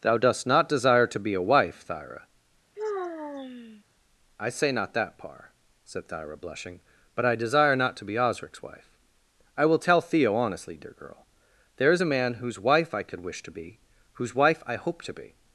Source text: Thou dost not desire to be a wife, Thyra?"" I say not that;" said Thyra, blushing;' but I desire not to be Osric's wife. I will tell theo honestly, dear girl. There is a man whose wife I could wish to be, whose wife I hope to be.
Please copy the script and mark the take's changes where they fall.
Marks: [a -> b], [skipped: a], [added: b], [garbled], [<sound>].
Thou dost not desire to be a wife, Thyra?"" [sigh] I say not that;" [added: par] said Thyra, blushing;' but I desire not to be Osric's wife. I will tell theo honestly, dear girl. There is a man whose wife I could wish to be, whose wife I hope to be.